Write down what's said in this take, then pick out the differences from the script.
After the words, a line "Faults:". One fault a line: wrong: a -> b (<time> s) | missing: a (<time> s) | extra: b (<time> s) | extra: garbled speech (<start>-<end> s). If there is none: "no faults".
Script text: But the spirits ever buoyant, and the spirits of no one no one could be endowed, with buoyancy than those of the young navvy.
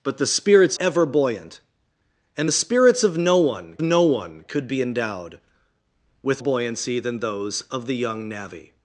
But the spirits ever buoyant, and the spirits of no one no one could be endowed, with buoyancy than those of the young navvy.
Faults:
no faults